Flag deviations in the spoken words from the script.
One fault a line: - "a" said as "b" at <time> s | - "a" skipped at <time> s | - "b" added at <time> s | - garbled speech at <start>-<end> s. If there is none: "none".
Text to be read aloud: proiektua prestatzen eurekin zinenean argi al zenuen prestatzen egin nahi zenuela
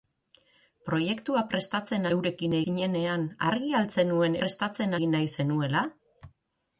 none